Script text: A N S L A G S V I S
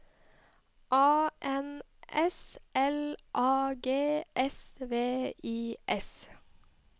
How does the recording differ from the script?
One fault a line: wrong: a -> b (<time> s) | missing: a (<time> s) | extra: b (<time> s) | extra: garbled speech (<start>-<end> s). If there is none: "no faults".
no faults